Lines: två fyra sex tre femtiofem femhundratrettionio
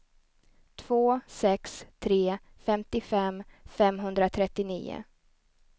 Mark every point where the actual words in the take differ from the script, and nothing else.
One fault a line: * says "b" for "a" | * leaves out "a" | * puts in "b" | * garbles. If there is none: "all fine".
* leaves out "fyra"